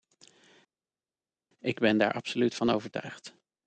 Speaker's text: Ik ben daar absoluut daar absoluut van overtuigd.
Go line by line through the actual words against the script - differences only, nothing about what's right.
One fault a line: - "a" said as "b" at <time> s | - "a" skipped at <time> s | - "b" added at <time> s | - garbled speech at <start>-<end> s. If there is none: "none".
- "daar absoluut" skipped at 2.6 s